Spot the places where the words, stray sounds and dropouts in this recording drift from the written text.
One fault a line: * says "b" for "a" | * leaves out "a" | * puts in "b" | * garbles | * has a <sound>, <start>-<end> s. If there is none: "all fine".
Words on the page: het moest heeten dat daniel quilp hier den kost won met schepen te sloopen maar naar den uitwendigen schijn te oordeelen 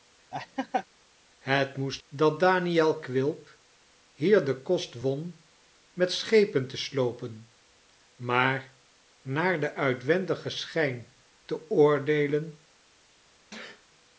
* has a laugh, 0.3-0.9 s
* leaves out "heeten"
* has a sneeze, 13.5-13.9 s